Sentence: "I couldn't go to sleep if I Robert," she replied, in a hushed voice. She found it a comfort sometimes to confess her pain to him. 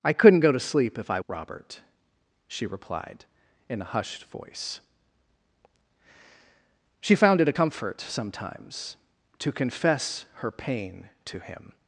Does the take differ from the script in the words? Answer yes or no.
no